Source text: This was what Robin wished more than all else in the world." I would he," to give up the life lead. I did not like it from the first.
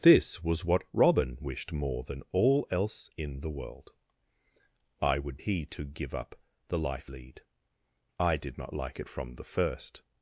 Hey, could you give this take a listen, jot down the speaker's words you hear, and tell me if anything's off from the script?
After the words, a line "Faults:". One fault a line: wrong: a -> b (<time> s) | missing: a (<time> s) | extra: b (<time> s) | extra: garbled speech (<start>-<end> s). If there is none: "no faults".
This was what Robin wished more than all else in the world." I would he," to give up the life lead. I did not like it from the first.
Faults:
no faults